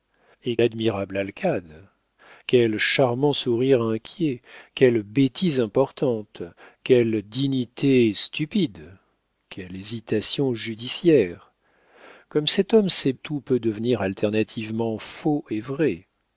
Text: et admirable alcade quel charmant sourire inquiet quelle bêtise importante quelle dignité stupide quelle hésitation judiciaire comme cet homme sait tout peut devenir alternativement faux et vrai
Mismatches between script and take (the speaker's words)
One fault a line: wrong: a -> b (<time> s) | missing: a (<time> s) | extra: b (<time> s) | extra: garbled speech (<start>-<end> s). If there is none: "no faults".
no faults